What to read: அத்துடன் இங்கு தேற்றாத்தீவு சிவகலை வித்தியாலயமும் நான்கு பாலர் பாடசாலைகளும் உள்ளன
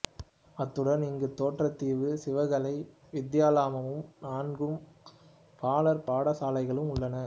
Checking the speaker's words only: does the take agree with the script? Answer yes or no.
yes